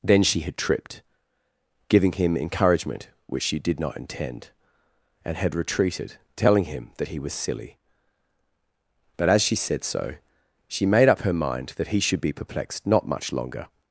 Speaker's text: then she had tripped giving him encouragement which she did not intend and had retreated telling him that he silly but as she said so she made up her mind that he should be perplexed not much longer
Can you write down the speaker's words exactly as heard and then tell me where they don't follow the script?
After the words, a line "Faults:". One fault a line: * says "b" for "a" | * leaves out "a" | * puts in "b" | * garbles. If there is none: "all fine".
then she had tripped giving him encouragement which she did not intend and had retreated telling him that he was silly but as she said so she made up her mind that he should be perplexed not much longer
Faults:
* puts in "was"